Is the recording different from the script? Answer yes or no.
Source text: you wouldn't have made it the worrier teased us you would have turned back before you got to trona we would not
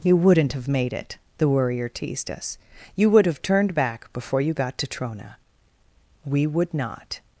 no